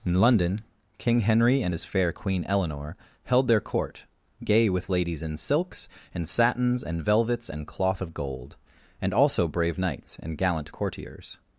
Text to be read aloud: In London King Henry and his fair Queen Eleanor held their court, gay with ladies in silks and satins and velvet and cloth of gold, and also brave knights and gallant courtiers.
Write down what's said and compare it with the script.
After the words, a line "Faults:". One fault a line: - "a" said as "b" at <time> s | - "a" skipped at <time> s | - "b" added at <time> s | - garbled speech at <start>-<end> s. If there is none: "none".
In London King Henry and his fair Queen Eleanor held their court, gay with ladies in silks and satins and velvets and cloth of gold, and also brave knights and gallant courtiers.
Faults:
- "velvet" said as "velvets" at 7.0 s